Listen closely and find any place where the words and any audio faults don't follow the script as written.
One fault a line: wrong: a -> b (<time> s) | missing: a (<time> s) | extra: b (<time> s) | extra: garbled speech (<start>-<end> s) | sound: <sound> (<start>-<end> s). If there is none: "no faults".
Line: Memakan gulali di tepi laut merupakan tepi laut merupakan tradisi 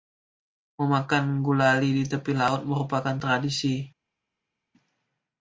missing: tepi laut merupakan (3.1 s)